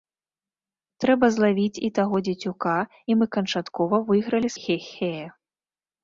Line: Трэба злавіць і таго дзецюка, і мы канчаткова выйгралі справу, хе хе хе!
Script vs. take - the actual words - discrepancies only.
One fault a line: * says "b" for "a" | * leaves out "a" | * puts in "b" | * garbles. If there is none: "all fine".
* leaves out "справу хе"